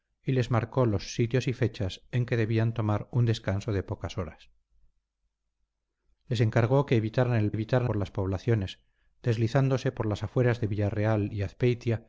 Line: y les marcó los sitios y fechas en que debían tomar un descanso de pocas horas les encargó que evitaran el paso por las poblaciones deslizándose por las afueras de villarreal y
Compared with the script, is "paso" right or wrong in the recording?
wrong